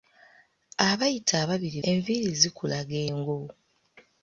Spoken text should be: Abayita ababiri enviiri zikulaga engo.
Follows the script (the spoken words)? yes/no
yes